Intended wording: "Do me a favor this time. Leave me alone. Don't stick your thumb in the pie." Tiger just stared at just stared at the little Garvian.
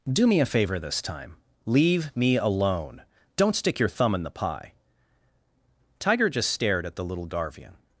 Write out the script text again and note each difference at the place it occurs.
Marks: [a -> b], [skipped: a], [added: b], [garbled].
"Do me a favor this time. Leave me alone. Don't stick your thumb in the pie." Tiger just stared at [skipped: just stared at] the little Garvian.